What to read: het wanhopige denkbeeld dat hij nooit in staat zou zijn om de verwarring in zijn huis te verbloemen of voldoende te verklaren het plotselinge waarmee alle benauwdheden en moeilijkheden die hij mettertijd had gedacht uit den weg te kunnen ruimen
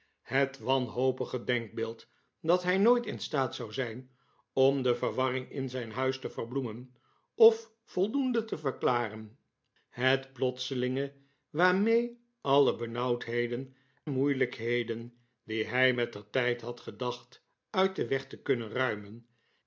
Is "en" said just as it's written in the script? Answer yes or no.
no